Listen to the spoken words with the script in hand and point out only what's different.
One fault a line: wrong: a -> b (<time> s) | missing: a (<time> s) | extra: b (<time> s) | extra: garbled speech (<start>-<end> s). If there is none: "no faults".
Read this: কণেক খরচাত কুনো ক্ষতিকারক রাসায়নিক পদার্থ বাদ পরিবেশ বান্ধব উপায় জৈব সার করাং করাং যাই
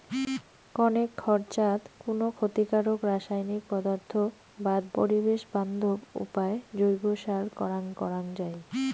no faults